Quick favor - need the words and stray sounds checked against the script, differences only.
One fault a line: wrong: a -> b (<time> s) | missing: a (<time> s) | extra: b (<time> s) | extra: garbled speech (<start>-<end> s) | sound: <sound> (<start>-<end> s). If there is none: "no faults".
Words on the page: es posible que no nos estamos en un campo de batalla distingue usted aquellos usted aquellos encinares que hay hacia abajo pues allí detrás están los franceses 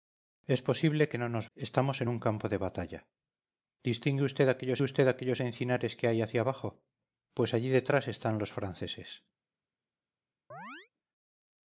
sound: chirp (10.5-10.9 s)